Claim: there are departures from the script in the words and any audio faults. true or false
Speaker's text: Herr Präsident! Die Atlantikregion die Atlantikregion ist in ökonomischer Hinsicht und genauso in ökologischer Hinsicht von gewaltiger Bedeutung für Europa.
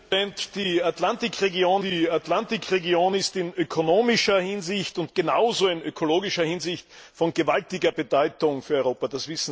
false